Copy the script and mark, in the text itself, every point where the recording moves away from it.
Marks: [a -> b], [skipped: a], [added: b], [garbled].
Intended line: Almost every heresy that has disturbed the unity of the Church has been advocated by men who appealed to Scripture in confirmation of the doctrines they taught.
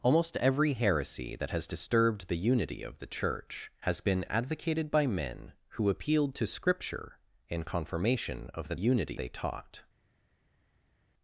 Almost every heresy that has disturbed the unity of the Church has been advocated by men who appealed to Scripture in confirmation of the [doctrines -> unity] they taught.